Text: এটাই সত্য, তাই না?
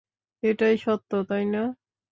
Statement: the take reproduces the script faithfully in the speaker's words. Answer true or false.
true